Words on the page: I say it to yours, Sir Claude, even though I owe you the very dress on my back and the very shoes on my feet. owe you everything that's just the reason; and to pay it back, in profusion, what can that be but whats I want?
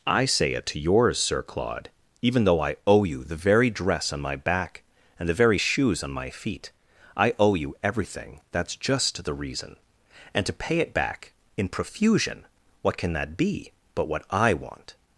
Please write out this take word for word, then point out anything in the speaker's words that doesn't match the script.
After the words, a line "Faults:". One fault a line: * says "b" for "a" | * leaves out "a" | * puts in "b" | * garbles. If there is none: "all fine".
I say it to yours, Sir Claude, even though I owe you the very dress on my back and the very shoes on my feet. I owe you everything that's just the reason; and to pay it back, in profusion, what can that be but what I want?
Faults:
* puts in "I"
* says "what" for "whats"